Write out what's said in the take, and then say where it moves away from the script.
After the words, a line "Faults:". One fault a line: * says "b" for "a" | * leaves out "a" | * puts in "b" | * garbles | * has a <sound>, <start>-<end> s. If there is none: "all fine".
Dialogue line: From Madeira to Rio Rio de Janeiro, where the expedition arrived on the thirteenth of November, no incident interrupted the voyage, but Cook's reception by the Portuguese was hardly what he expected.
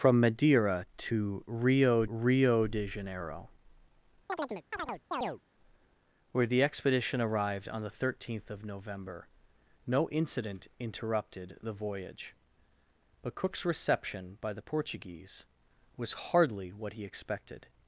From Madeira to Rio Rio de Janeiro, where the expedition arrived on the thirteenth of November, no incident interrupted the voyage, but Cook's reception by the Portuguese was hardly what he expected.
Faults:
* has a chirp, 4.3-5.4 s